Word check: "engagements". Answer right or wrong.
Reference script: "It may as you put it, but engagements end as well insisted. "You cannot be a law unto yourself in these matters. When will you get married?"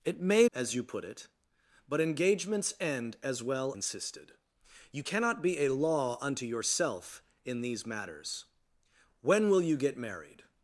right